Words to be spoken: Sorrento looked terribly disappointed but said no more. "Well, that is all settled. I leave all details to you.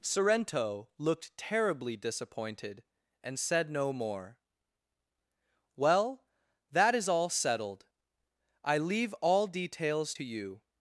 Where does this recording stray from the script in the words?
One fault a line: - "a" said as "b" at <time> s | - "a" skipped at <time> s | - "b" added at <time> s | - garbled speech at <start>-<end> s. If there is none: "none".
- "but" said as "and" at 3.2 s